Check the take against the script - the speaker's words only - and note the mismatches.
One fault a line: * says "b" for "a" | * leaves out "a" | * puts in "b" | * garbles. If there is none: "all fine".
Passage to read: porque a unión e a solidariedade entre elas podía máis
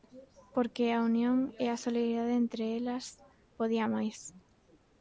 all fine